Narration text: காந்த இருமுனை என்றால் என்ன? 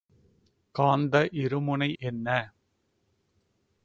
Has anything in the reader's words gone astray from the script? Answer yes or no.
yes